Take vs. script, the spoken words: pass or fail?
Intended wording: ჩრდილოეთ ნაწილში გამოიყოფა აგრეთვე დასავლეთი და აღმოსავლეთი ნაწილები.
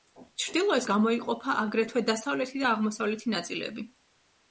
fail